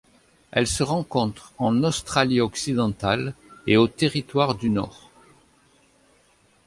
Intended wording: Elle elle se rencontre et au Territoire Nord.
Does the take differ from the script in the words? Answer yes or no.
yes